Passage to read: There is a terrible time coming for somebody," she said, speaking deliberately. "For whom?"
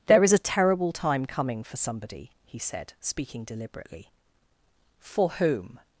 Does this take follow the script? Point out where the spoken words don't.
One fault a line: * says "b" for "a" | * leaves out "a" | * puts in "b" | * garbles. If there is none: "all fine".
* says "he" for "she"